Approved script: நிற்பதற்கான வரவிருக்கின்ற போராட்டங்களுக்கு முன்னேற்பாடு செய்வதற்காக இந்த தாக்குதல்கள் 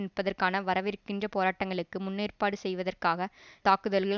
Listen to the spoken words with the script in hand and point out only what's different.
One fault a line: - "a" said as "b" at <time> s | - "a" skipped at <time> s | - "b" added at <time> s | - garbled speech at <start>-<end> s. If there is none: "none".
- "இந்த" skipped at 3.3 s